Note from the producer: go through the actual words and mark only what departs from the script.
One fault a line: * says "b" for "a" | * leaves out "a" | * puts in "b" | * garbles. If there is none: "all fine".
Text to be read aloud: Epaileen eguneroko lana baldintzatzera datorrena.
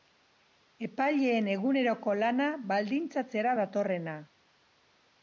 all fine